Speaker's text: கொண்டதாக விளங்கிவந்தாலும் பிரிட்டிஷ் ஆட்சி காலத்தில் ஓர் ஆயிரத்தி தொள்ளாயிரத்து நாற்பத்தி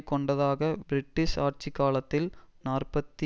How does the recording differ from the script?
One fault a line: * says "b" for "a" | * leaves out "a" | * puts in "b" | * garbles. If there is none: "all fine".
* leaves out "விளங்கிவந்தாலும்"
* leaves out "ஓர் ஆயிரத்தி தொள்ளாயிரத்து"